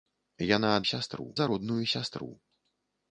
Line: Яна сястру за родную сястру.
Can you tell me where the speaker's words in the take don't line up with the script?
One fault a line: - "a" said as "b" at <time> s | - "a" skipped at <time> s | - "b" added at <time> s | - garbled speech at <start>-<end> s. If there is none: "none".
none